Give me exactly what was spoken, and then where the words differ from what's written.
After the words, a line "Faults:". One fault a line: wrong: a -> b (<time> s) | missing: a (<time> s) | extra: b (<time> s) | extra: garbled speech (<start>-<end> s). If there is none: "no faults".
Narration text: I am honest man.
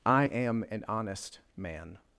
I am an honest man.
Faults:
extra: an (0.7 s)